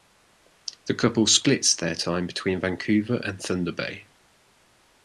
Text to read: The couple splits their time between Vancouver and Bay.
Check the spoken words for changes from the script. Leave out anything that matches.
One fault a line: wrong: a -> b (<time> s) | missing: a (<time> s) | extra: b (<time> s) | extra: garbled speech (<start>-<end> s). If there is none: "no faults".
extra: Thunder (3.4 s)